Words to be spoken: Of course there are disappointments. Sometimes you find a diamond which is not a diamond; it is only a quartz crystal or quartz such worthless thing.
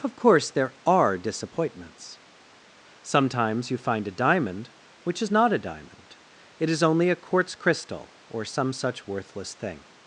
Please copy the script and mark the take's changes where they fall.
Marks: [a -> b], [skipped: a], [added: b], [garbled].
Of course there are disappointments. Sometimes you find a diamond which is not a diamond; it is only a quartz crystal or [quartz -> some] such worthless thing.